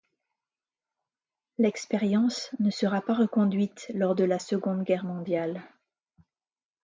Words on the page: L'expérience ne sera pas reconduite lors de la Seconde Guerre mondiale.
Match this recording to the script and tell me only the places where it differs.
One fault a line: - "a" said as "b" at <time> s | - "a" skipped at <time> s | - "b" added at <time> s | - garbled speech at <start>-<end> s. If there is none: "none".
none